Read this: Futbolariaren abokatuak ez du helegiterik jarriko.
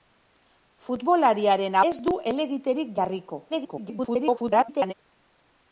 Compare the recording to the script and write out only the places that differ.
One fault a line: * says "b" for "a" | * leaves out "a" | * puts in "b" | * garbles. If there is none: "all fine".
* leaves out "abokatuak"
* garbles